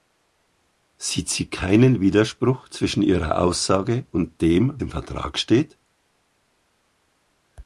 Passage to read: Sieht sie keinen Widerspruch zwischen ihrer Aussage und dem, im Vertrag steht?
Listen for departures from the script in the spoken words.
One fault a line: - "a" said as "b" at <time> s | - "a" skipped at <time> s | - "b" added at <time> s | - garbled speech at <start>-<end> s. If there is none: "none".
none